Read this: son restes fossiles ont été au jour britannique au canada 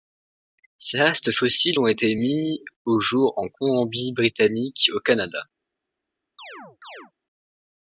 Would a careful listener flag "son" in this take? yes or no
yes